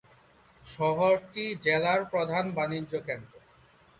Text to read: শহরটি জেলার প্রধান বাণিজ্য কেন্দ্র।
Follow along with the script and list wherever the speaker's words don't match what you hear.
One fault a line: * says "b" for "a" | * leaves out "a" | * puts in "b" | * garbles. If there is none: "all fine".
all fine